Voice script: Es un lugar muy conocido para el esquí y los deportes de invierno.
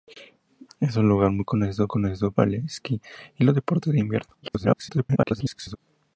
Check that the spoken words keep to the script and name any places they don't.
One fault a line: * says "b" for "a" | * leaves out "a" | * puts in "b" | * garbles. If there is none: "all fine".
* puts in "conocido"
* garbles